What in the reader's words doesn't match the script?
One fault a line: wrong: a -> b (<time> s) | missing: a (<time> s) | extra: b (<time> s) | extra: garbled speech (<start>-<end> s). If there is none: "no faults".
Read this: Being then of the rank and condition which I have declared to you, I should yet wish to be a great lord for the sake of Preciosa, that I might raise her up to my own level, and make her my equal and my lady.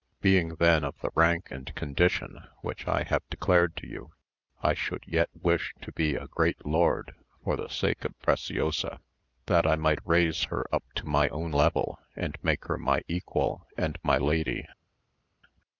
no faults